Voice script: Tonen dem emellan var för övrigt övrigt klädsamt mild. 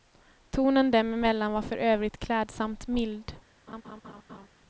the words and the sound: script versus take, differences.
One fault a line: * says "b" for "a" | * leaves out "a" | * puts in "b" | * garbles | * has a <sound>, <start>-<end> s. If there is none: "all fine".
* leaves out "övrigt"
* has a laugh, 3.7-4.5 s